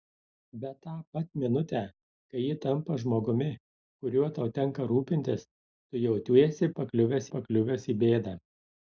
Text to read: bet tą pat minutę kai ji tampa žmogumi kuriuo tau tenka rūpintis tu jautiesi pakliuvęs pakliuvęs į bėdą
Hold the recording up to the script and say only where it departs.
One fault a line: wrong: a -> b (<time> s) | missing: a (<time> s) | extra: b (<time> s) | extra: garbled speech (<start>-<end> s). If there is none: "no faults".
no faults